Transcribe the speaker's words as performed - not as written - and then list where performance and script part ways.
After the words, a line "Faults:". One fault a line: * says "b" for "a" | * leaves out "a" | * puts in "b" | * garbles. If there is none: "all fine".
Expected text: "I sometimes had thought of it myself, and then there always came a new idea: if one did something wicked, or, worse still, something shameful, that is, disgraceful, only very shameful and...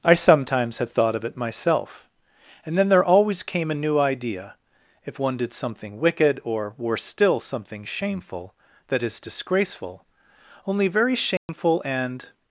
"I sometimes had thought of it myself, and then there always came a new idea: if one did something wicked, or, worse still, something shameful, that is, disgraceful, only very shameful and...
Faults:
all fine